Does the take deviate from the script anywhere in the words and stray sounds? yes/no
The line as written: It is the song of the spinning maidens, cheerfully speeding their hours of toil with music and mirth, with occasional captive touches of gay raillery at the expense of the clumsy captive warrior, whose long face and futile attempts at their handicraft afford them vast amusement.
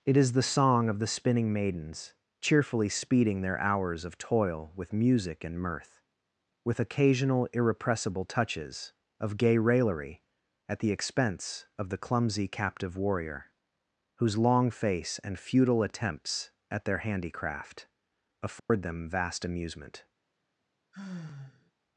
yes